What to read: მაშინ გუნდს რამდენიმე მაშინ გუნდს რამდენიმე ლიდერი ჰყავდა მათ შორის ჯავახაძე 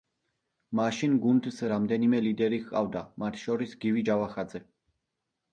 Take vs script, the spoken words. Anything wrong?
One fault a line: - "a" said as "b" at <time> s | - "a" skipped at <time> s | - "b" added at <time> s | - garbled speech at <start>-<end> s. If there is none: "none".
- "მაშინ გუნდს რამდენიმე" skipped at 2.2 s
- "გივი" added at 3.9 s